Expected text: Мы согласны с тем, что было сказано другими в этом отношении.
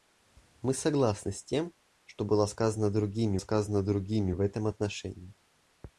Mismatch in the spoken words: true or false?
true